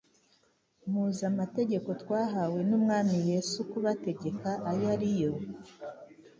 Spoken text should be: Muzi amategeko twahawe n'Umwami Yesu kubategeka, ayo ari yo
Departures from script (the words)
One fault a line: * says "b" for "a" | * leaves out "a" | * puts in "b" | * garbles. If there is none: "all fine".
all fine